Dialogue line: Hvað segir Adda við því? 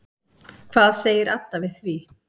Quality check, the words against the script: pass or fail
pass